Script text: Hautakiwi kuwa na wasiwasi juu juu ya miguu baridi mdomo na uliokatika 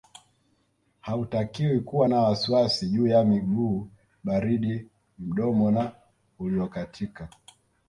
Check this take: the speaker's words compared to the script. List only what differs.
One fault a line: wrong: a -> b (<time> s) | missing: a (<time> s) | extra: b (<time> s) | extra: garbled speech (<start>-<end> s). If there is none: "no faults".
missing: juu (3.1 s)